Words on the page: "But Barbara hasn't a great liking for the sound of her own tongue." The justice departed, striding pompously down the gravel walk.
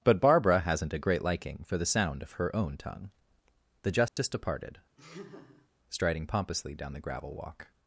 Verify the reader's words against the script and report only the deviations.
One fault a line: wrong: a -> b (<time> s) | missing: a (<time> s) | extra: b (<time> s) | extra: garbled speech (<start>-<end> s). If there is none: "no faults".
no faults